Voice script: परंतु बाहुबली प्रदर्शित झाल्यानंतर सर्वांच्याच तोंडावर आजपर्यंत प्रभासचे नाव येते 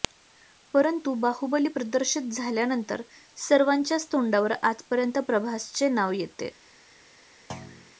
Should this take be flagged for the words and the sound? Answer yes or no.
yes